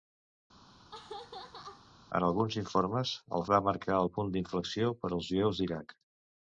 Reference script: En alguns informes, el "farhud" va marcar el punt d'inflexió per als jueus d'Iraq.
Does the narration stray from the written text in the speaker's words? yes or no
yes